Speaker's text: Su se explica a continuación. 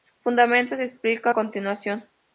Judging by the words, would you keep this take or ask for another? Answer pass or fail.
fail